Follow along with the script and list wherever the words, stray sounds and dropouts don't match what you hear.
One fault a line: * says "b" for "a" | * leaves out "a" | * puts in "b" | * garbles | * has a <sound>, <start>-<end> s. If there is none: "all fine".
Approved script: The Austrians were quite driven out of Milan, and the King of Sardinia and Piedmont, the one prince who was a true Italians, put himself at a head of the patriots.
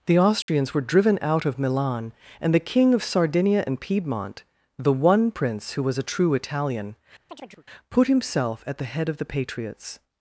* has a dropout, 0.4-0.5 s
* leaves out "quite"
* says "Italian" for "Italians"
* has a chirp, 7.3-7.6 s
* says "the" for "a"